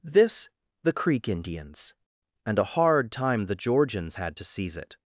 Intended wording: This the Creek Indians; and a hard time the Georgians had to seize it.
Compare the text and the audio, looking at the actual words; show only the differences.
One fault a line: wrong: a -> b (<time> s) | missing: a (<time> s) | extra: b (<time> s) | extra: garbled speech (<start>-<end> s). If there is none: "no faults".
no faults